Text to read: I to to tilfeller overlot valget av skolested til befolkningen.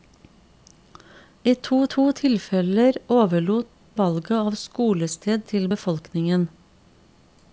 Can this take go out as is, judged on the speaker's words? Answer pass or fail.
pass